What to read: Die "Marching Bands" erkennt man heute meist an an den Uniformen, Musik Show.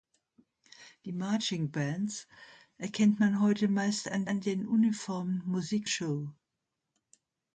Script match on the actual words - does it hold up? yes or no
yes